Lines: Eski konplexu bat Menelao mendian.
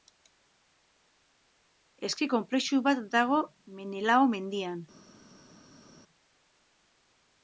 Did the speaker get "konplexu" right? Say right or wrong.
right